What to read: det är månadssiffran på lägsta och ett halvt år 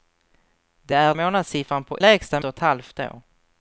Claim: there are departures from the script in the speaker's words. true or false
false